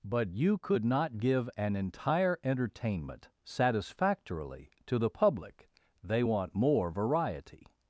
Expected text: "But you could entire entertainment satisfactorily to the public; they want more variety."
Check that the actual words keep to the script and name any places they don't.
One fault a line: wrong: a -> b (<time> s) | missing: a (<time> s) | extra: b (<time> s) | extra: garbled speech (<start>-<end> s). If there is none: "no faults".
extra: not give an (0.8 s)